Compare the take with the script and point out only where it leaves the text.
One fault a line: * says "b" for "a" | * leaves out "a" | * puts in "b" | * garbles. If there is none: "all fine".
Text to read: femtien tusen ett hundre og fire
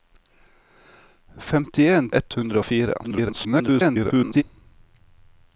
* leaves out "tusen"
* garbles